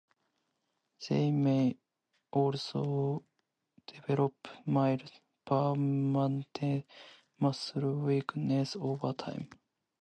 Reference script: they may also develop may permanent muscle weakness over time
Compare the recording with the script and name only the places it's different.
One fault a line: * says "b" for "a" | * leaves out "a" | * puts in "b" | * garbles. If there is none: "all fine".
* says "mild" for "may"